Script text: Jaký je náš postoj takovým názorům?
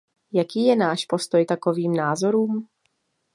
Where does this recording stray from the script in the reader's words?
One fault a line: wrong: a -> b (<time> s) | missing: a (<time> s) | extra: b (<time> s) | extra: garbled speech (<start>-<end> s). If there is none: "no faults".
no faults